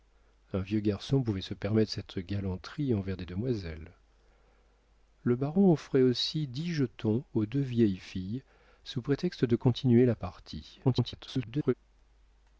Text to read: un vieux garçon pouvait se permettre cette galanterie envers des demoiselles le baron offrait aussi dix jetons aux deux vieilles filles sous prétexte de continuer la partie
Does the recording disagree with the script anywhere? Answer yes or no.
yes